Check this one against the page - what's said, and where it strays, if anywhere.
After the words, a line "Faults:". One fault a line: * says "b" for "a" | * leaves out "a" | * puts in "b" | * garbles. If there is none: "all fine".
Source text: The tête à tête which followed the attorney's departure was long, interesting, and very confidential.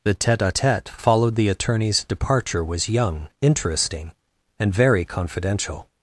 The tête à tête followed the attorney's departure was young, interesting, and very confidential.
Faults:
* leaves out "which"
* says "young" for "long"